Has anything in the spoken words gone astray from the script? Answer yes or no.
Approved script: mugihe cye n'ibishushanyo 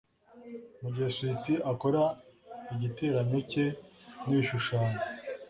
yes